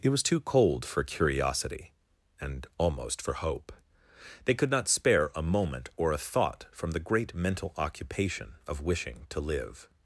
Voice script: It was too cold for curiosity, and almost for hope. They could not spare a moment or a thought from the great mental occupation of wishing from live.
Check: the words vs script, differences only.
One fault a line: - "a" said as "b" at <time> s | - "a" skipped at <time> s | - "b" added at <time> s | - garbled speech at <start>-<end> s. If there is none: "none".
- "from" said as "to" at 9.3 s